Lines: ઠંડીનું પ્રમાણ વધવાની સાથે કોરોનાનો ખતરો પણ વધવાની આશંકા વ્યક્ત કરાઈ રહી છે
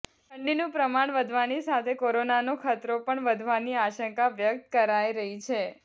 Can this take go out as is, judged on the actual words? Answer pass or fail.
pass